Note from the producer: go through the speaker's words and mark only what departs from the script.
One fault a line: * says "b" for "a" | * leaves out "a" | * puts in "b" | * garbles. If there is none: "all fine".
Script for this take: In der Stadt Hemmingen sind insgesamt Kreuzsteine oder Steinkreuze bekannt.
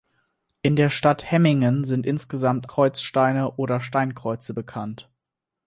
all fine